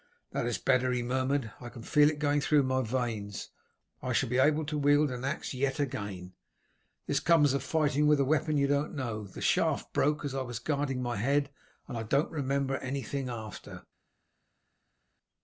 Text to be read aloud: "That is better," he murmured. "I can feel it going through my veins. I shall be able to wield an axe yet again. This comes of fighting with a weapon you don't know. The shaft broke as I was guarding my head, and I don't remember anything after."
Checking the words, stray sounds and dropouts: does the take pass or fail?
pass